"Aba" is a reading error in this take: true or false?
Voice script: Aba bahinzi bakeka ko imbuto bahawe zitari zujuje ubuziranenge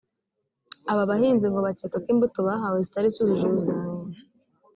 false